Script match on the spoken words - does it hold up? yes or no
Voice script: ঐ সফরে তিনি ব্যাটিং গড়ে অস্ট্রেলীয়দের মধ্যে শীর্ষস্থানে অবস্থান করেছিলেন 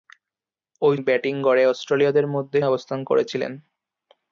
no